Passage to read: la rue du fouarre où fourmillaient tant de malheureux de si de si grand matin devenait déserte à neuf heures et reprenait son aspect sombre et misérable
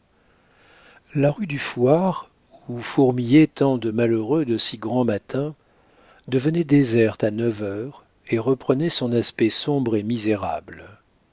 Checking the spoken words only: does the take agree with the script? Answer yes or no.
no